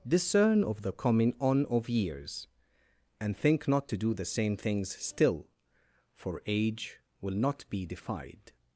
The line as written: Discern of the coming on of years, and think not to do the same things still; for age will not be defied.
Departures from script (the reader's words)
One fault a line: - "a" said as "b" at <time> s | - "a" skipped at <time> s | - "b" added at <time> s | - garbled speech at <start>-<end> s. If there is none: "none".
none